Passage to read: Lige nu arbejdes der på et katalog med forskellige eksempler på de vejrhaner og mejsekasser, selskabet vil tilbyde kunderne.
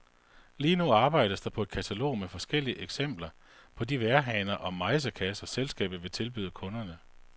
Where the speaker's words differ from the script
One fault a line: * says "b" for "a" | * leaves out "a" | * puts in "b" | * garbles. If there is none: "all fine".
all fine